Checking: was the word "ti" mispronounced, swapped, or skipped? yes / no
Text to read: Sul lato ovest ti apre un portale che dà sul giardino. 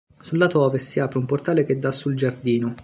yes